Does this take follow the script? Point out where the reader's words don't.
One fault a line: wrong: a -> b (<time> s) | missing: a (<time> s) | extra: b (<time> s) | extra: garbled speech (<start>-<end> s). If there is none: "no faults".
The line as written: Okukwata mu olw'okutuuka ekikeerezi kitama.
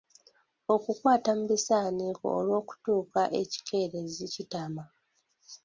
extra: bisaaniiko (1.5 s)